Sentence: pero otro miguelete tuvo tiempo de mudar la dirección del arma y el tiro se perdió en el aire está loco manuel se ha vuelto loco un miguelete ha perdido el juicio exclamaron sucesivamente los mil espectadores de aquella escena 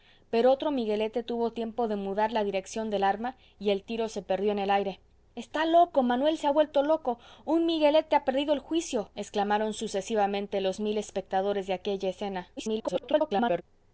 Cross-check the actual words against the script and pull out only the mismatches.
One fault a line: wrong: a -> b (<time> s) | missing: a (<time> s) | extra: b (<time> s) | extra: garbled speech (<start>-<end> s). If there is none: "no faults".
extra: garbled speech (12.6-13.6 s)